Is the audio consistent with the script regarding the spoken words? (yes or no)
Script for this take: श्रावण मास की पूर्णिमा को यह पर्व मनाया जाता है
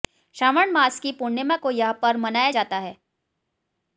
yes